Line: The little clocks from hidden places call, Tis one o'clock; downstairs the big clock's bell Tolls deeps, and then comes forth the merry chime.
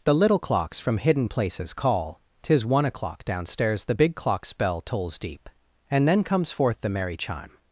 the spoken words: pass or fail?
fail